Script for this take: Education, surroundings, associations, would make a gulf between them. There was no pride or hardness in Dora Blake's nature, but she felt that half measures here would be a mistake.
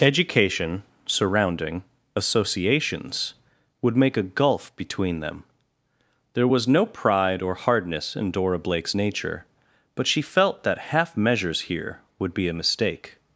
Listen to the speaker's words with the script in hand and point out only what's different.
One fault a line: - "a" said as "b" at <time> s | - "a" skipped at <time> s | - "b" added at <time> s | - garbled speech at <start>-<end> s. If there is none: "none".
- "surroundings" said as "surrounding" at 1.1 s